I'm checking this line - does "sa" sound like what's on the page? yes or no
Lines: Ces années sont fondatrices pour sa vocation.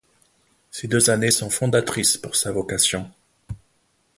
yes